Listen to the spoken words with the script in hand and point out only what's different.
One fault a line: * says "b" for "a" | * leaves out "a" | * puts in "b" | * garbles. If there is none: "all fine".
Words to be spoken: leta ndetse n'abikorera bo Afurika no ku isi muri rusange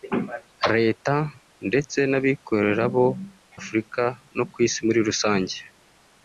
all fine